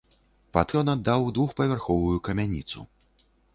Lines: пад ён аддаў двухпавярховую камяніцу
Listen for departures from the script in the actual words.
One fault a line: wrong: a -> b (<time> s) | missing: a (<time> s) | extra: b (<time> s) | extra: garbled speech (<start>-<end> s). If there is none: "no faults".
no faults